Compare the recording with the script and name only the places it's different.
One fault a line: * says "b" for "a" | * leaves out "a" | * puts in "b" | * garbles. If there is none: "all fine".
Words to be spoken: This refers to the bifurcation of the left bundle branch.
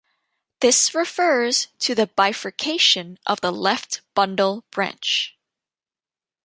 all fine